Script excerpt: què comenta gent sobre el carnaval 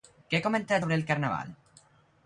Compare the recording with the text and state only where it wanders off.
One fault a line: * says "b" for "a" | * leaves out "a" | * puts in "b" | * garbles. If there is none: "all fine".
* leaves out "gent"